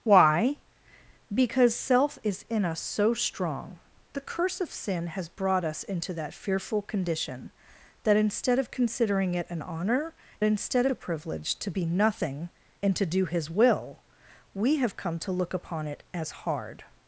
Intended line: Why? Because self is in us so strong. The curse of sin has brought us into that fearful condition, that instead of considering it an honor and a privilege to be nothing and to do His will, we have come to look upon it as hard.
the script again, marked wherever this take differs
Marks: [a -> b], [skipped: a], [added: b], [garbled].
Why? Because self is in us so strong. The curse of sin has brought us into that fearful condition, that instead of considering it an honor [and -> instead] a privilege to be nothing and to do His will, we have come to look upon it as hard.